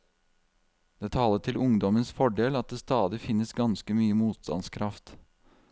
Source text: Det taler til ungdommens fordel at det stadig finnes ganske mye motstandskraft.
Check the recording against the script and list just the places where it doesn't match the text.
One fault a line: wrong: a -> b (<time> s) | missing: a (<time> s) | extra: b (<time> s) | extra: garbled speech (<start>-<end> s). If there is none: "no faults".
no faults